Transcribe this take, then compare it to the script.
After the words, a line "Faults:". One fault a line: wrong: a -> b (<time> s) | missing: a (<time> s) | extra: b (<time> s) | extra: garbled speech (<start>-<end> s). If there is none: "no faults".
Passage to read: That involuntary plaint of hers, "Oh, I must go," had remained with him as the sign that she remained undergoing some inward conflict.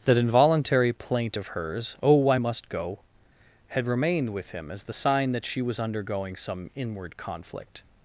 That involuntary plaint of hers, "Oh, I must go," had remained with him as the sign that she was undergoing some inward conflict.
Faults:
wrong: remained -> was (5.6 s)